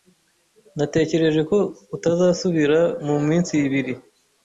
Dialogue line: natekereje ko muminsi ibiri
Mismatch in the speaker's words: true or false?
true